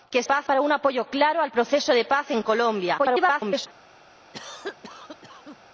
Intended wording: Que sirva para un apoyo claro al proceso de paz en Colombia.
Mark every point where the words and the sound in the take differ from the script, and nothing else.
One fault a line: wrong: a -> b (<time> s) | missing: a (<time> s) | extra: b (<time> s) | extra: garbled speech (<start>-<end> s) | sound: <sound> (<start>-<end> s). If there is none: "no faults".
wrong: sirva -> paz (0.2 s)
extra: garbled speech (3.0-3.7 s)
sound: cough (4.3-5.6 s)